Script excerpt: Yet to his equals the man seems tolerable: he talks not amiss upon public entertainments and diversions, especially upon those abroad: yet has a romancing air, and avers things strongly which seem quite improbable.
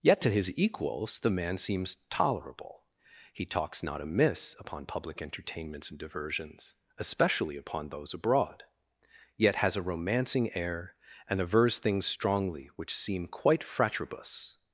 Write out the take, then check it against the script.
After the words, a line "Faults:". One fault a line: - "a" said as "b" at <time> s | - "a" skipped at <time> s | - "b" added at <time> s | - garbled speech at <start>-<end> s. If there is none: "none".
Yet to his equals the man seems tolerable: he talks not amiss upon public entertainments and diversions, especially upon those abroad: yet has a romancing air, and avers things strongly which seem quite fratribus.
Faults:
- "improbable" said as "fratribus" at 13.6 s